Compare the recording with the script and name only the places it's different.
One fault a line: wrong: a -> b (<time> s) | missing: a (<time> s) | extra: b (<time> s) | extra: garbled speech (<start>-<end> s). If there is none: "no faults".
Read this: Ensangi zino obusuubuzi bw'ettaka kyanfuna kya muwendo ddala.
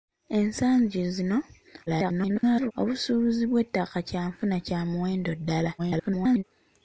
extra: garbled speech (1.9-2.7 s)
extra: garbled speech (5.8-6.4 s)